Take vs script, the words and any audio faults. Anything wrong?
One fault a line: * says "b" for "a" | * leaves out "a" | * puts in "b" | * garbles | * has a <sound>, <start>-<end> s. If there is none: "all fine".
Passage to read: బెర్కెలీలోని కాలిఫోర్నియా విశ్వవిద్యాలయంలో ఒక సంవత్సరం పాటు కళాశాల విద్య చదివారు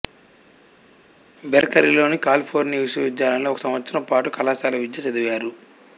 all fine